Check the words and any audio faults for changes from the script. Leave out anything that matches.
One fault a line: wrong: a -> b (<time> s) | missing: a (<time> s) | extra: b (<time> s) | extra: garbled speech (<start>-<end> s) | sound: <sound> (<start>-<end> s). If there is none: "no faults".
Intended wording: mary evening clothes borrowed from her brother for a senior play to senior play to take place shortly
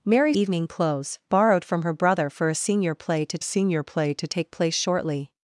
no faults